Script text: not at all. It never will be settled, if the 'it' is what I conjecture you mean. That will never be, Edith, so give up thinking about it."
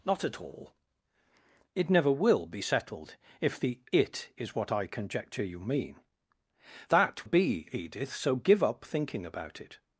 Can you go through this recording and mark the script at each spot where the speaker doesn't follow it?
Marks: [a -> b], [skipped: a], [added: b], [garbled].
not at all. It never will be settled, if the 'it' is what I conjecture you mean. That [skipped: will never] be, Edith, so give up thinking about it."